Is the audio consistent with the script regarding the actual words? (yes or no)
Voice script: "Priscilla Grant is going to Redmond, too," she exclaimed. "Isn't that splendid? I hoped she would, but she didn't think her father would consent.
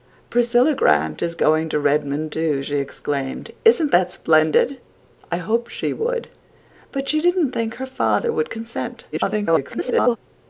no